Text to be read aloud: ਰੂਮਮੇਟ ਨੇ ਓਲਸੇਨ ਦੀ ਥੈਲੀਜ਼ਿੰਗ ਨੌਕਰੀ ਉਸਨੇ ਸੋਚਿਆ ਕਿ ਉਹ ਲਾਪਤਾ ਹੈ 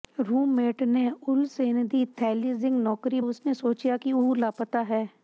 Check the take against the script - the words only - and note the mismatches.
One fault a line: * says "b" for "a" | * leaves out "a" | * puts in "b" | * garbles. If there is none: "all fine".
all fine